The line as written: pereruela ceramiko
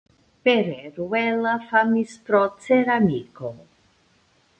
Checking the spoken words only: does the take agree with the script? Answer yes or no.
no